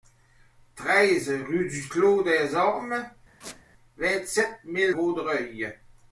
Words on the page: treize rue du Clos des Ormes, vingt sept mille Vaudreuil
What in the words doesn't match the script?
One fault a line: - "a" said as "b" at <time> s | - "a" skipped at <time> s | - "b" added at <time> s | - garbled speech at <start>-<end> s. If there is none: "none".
none